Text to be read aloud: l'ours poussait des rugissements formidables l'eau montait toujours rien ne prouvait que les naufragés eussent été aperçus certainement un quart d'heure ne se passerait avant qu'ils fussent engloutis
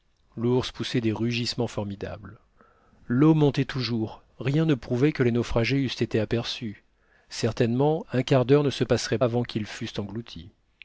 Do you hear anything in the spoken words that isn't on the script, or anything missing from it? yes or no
no